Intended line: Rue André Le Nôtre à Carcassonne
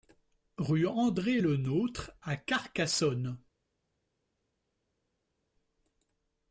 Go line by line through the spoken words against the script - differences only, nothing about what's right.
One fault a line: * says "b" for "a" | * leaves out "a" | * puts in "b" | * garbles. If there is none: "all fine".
all fine